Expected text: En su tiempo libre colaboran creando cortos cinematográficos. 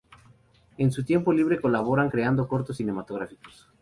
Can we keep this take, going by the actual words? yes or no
yes